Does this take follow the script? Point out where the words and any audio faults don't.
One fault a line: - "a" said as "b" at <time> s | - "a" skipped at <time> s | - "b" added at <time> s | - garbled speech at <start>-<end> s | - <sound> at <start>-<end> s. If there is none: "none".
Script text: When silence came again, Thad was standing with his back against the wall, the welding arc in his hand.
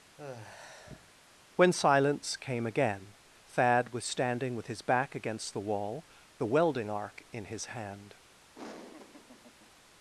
- sigh at 0.2-1.1 s
- laugh at 8.5-9.7 s